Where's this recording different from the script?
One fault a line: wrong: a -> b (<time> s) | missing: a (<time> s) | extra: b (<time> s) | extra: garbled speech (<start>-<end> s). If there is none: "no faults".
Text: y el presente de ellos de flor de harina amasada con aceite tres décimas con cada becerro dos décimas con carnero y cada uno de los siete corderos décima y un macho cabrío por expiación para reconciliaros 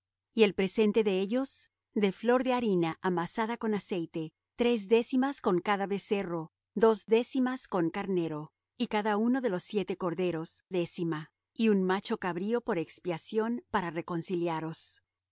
no faults